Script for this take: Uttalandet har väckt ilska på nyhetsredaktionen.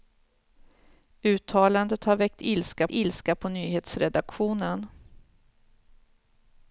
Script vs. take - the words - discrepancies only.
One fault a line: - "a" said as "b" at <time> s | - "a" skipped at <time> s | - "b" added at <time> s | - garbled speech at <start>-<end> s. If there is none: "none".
- "ilska" added at 2.9 s